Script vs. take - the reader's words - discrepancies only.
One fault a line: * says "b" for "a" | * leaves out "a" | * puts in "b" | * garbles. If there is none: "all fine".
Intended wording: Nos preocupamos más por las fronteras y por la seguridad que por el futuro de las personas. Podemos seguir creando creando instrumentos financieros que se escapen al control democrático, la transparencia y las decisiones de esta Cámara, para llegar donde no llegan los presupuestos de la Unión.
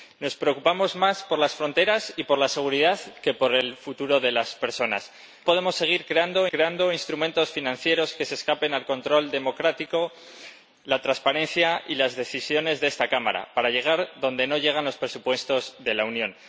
all fine